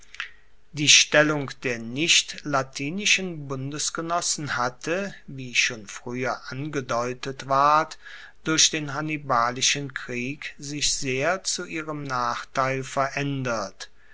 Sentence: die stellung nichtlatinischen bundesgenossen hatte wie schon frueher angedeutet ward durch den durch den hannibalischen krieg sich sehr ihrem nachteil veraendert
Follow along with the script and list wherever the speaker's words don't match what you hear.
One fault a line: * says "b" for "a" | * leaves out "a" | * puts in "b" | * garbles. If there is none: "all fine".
* puts in "der"
* leaves out "durch den"
* puts in "zu"